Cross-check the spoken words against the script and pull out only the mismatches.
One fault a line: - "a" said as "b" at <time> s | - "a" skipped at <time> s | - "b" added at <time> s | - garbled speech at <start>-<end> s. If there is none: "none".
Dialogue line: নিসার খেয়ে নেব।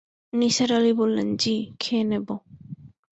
- "আলি বললেন জ্বি" added at 0.7 s